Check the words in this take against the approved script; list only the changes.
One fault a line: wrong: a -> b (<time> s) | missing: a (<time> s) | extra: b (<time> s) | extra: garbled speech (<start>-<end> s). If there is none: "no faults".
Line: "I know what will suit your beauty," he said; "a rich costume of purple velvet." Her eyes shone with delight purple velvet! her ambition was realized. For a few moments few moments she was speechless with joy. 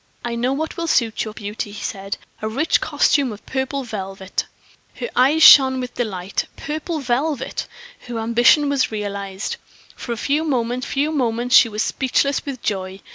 no faults